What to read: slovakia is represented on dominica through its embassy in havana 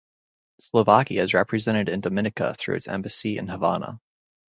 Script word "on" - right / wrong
wrong